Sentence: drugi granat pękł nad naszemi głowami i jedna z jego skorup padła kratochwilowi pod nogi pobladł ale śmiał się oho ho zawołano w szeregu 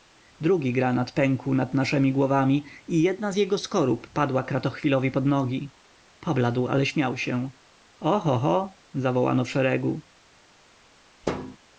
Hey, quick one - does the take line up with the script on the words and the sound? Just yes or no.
no